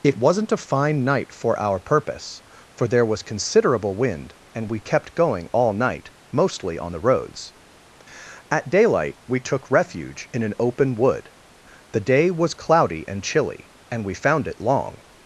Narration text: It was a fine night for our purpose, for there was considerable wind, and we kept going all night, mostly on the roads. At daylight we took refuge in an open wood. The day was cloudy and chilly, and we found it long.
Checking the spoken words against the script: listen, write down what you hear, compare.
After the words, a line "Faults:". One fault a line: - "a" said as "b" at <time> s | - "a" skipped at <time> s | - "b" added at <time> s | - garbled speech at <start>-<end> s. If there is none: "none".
It wasn't a fine night for our purpose, for there was considerable wind, and we kept going all night, mostly on the roads. At daylight we took refuge in an open wood. The day was cloudy and chilly, and we found it long.
Faults:
- "was" said as "wasn't" at 0.2 s